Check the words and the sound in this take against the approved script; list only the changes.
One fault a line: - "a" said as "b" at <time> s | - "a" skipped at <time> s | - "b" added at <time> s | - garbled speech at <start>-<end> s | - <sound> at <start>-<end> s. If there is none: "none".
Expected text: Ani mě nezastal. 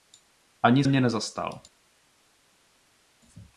none